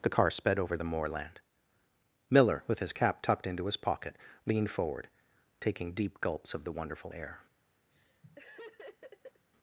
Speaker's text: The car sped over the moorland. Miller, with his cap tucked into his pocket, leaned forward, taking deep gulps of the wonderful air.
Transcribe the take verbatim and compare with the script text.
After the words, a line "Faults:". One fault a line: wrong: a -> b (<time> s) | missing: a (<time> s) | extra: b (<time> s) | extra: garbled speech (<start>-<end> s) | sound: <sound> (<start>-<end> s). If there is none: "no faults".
The car sped over the moorland. Miller, with his cap tucked into his pocket, leaned forward, taking deep gulps of the wonderful air.
Faults:
sound: laugh (7.9-9.4 s)